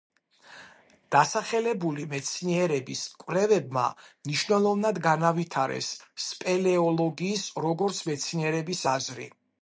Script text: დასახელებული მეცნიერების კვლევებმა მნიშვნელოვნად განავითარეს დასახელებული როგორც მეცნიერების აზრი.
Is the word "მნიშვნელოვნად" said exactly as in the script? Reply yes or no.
yes